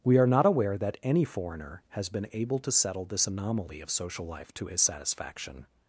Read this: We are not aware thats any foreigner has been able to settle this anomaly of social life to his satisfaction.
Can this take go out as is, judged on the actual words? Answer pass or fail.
fail